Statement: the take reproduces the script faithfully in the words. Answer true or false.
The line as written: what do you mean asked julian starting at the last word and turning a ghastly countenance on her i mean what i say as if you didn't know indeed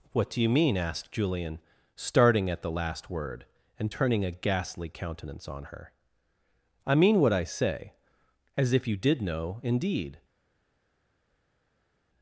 false